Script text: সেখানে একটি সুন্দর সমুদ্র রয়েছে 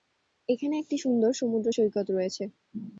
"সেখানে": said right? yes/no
no